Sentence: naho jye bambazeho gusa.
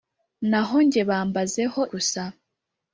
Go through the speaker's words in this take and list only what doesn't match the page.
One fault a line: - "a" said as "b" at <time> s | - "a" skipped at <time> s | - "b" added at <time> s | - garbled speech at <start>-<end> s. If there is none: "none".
none